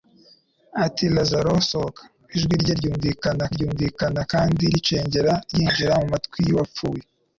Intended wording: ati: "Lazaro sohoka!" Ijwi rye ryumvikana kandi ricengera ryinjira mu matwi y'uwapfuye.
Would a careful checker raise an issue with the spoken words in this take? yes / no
yes